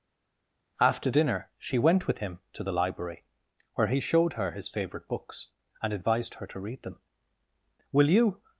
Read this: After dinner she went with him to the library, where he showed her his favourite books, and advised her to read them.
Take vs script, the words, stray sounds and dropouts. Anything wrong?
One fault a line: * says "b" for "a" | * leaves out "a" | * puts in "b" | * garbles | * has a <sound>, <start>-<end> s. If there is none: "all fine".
* puts in "Will you"